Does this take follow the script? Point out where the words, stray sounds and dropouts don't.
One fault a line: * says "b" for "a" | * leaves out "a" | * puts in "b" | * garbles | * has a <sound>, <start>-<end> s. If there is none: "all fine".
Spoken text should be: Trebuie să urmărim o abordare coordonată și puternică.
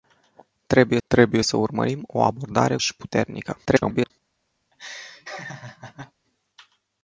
* puts in "trebuie"
* leaves out "coordonată"
* garbles
* has a laugh, 4.7-6.1 s